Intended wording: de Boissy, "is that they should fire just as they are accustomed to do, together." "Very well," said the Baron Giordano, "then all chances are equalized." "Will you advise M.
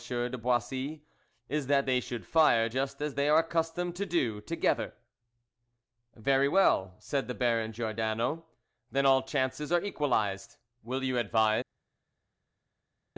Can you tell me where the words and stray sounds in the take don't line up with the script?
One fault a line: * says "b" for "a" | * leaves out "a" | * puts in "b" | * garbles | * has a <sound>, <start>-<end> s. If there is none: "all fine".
all fine